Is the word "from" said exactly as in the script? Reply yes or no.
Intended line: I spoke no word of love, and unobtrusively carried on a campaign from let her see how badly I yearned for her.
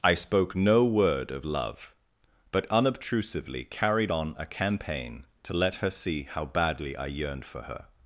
no